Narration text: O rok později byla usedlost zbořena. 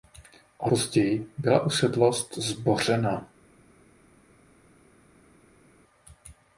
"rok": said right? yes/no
no